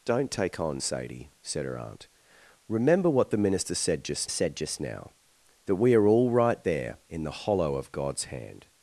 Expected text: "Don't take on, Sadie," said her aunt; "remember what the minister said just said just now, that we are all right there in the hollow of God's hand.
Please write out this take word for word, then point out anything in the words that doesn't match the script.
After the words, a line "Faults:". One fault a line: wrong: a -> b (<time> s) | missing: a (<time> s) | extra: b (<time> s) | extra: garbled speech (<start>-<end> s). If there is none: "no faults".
"Don't take on, Sadie," said her aunt; "remember what the minister said just said just now, that we are all right there in the hollow of God's hand.
Faults:
no faults